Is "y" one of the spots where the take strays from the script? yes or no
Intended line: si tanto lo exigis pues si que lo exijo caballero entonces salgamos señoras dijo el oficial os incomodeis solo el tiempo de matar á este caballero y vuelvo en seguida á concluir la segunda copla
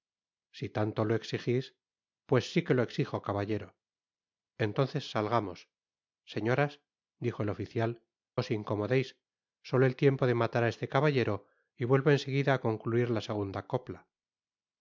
no